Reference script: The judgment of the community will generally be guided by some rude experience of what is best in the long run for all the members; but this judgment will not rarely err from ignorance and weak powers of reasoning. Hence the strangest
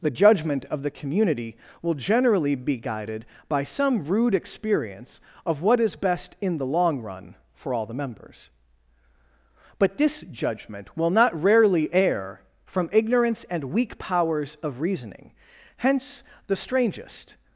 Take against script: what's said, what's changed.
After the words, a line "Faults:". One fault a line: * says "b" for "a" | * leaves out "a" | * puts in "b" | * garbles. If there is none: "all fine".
The judgment of the community will generally be guided by some rude experience of what is best in the long run for all the members; but this judgment will not rarely err from ignorance and weak powers of reasoning. Hence the strangest
Faults:
all fine